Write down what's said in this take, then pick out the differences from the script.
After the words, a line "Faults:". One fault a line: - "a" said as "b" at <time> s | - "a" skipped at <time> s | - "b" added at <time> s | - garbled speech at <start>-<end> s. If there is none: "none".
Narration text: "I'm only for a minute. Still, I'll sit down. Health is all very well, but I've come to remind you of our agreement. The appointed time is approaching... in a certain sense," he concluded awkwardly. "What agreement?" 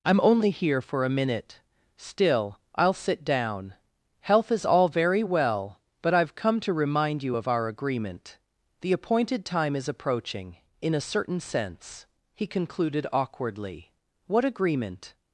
"I'm only here for a minute. Still, I'll sit down. Health is all very well, but I've come to remind you of our agreement. The appointed time is approaching... in a certain sense," he concluded awkwardly. "What agreement?"
Faults:
- "here" added at 0.5 s